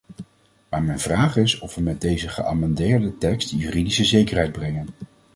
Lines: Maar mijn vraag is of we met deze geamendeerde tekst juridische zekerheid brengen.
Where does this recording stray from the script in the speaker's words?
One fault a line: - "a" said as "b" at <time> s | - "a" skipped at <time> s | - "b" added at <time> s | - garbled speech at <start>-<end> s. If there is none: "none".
none